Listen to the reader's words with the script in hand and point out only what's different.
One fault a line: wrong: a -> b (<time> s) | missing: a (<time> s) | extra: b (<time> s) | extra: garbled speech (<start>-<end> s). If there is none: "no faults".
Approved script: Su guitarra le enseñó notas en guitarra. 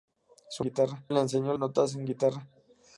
no faults